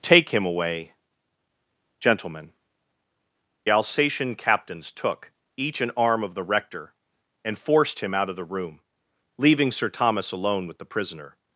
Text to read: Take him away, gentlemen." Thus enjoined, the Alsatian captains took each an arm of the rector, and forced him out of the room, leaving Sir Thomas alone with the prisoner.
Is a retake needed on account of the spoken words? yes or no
yes